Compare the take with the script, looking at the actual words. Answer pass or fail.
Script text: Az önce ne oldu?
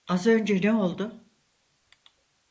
pass